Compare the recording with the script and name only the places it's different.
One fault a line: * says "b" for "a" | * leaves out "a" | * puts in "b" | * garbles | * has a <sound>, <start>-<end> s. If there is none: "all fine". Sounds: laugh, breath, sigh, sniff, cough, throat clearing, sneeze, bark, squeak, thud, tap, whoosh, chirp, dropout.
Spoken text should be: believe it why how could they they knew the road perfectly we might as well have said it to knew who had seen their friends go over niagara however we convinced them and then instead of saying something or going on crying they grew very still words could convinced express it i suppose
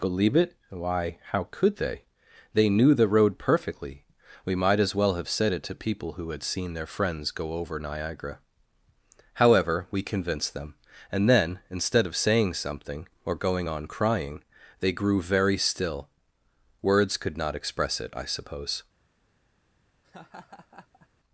* says "people" for "knew"
* says "not" for "convinced"
* has a laugh, 20.0-21.1 s